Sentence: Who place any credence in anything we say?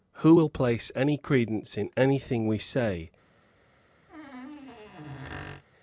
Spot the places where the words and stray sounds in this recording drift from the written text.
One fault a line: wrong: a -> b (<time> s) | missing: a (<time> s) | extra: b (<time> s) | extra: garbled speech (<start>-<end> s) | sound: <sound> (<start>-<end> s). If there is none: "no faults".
extra: will (0.3 s)
sound: squeak (4.1-5.6 s)